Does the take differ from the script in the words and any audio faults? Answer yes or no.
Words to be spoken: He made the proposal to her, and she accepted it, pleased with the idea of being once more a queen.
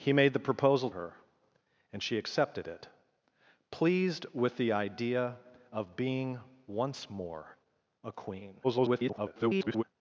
yes